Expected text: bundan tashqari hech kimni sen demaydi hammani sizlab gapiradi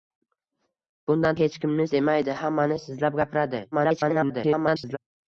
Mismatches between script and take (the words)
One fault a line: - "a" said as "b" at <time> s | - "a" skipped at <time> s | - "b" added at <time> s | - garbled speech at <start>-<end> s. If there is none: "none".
- "tashqari" skipped at 1.4 s
- "sen" skipped at 1.9 s
- garbled speech at 3.7-5.0 s